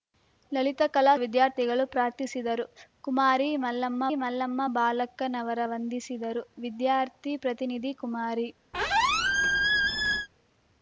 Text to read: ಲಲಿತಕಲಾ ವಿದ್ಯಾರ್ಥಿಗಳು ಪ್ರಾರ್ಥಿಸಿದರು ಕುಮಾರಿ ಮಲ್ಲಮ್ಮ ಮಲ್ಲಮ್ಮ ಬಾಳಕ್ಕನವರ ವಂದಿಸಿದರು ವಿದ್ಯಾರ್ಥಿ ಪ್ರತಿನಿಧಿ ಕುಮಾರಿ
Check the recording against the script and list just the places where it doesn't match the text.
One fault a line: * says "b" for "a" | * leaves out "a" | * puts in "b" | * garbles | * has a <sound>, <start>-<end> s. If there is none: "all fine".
* has a squeak, 8.7-10.3 s